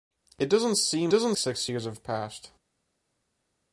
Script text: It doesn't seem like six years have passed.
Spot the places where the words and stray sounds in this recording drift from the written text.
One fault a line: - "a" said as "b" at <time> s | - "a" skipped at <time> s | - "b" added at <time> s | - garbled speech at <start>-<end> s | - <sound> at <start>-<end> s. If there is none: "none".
- "like" said as "doesn't" at 1.1 s